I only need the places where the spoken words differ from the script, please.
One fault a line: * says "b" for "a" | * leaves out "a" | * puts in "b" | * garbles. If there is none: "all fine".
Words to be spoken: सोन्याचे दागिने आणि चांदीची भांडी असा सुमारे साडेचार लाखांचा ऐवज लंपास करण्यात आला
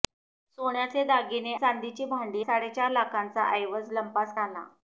* leaves out "आणि"
* leaves out "असा सुमारे"
* leaves out "करण्यात"